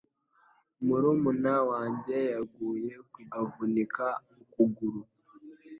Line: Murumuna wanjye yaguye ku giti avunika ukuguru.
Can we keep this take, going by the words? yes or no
no